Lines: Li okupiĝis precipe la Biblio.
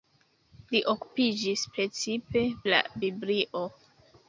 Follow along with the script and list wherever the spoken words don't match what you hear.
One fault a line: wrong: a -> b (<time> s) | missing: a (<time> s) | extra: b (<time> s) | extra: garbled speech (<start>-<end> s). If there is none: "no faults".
no faults